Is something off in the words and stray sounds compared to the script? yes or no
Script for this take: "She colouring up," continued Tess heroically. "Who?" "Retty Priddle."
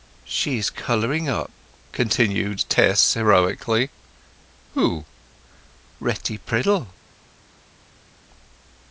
yes